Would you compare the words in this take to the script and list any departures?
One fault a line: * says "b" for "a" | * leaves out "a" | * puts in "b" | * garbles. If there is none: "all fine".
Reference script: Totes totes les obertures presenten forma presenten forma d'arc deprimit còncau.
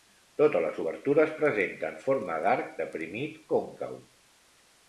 * leaves out "totes"
* leaves out "presenten forma"